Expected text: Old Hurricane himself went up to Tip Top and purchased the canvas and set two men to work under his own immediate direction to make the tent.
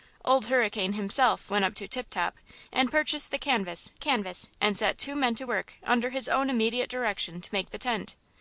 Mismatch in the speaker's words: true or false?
true